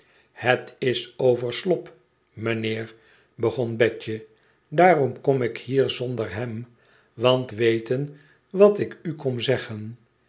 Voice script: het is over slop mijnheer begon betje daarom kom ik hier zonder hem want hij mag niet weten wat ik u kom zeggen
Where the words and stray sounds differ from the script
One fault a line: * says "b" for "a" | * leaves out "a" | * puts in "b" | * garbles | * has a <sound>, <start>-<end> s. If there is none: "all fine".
* leaves out "hij mag niet"